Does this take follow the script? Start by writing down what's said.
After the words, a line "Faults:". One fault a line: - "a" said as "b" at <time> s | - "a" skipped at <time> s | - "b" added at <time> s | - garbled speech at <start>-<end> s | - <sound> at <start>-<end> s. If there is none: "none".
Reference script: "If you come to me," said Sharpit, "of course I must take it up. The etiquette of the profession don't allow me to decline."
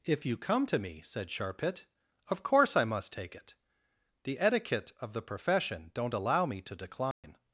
"If you come to me," said Sharpit, "of course I must take it. The etiquette of the profession don't allow me to decline."
Faults:
- "up" skipped at 3.6 s
- dropout at 7.1-7.2 s